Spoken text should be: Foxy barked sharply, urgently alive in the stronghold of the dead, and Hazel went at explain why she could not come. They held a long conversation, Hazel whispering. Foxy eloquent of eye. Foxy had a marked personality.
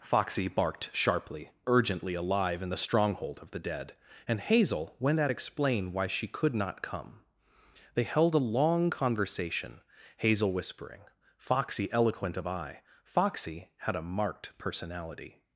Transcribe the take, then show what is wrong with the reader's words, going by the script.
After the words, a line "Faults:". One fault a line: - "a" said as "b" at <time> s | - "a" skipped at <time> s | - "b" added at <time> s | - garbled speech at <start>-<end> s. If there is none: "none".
Foxy barked sharply, urgently alive in the stronghold of the dead, and Hazel went at explain why she could not come. They held a long conversation, Hazel whispering. Foxy eloquent of eye. Foxy had a marked personality.
Faults:
none